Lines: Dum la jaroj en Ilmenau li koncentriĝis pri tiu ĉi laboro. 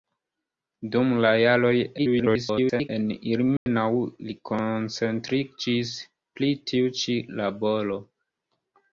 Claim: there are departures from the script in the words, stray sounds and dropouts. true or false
true